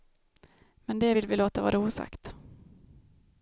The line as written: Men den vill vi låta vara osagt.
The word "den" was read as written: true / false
false